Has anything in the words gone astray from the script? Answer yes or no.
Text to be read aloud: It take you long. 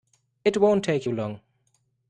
yes